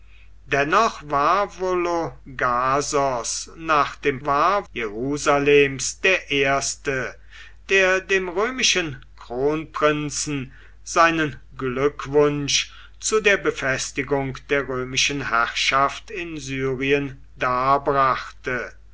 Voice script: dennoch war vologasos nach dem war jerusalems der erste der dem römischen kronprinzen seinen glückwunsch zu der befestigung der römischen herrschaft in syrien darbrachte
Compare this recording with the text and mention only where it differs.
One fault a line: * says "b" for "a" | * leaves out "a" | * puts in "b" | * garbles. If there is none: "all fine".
all fine